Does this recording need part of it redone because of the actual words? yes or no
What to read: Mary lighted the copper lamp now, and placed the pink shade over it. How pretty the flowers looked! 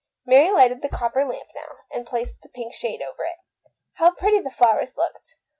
no